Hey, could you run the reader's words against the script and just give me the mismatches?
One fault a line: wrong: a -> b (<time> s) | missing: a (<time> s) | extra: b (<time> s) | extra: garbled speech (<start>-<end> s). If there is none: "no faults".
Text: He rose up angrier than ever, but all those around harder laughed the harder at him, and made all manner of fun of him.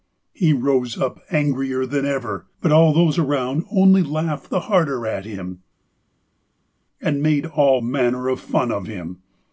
wrong: harder -> only (3.7 s)